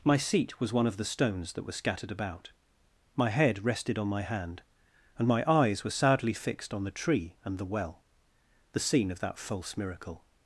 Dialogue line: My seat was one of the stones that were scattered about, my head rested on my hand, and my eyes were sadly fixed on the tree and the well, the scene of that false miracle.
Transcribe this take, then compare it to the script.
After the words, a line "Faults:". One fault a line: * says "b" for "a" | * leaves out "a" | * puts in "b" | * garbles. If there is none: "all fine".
My seat was one of the stones that were scattered about, my head rested on my hand, and my eyes were sadly fixed on the tree and the well, the scene of that false miracle.
Faults:
all fine